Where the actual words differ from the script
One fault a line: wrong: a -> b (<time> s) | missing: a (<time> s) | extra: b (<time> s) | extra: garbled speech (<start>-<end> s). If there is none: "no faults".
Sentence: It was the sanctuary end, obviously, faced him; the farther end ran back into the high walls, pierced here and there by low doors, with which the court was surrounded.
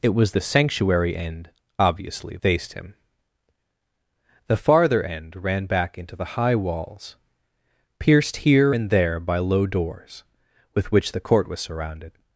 no faults